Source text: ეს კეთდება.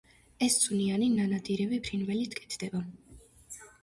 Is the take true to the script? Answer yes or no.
no